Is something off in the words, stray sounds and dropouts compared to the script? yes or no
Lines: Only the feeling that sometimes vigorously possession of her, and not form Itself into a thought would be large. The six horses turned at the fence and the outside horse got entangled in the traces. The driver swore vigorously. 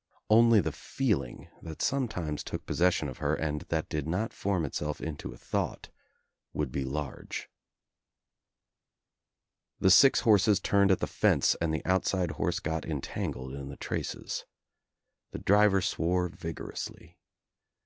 yes